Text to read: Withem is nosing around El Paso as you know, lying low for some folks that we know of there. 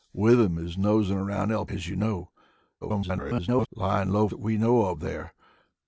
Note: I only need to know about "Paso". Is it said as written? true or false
false